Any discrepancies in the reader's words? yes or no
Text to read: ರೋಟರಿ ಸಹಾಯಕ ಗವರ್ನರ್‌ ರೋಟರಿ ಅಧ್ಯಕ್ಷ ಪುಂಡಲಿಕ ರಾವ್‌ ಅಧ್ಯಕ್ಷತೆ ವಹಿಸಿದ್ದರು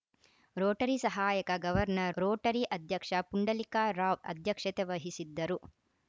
no